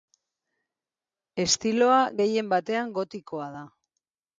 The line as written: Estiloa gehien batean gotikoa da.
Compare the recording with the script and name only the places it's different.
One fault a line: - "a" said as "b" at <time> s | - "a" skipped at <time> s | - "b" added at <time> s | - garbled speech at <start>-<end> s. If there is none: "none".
none